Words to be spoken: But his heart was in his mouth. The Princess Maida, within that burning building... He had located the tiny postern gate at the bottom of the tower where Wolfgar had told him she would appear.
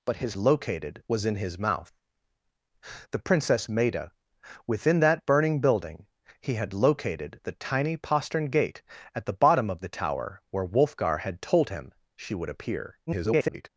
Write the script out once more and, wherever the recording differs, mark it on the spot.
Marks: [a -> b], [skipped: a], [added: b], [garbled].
But his [heart -> located] was in his mouth. The Princess Maida, within that burning building... He had located the tiny postern gate at the bottom of the tower where Wolfgar had told him she would appear. [garbled]